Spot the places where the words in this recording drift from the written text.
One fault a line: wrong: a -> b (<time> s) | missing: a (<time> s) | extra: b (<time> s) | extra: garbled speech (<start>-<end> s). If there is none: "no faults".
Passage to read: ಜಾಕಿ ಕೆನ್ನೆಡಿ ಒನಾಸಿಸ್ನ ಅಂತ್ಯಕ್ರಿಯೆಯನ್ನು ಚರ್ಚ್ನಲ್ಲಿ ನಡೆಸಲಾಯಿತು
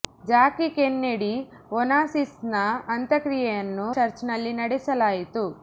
no faults